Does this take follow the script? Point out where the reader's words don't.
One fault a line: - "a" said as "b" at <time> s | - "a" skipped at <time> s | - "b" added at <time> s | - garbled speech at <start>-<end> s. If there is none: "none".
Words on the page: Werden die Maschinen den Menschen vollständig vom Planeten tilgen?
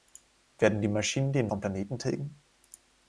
- "Menschen vollständig" skipped at 1.5 s